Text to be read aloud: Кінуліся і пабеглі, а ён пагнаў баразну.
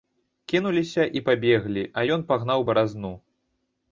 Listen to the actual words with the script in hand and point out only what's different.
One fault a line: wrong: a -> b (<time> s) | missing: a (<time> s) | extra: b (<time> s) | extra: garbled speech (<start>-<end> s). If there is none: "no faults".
no faults